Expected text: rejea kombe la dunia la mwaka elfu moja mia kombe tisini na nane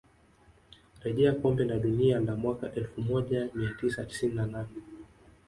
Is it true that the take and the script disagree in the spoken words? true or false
true